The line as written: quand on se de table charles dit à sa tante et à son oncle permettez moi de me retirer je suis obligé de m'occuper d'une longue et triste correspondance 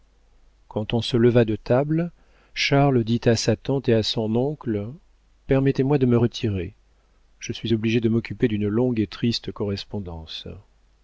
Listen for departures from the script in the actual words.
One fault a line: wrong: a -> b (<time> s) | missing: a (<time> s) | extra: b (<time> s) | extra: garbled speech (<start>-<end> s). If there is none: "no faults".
extra: leva (1.1 s)